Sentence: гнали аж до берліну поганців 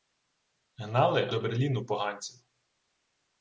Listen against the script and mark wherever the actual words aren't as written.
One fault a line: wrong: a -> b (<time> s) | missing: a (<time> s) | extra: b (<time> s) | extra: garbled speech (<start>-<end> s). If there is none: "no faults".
missing: аж (1.3 s)